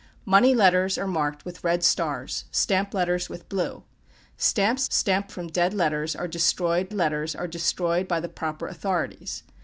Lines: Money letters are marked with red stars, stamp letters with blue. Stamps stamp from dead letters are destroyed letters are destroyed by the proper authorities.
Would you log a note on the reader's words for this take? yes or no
no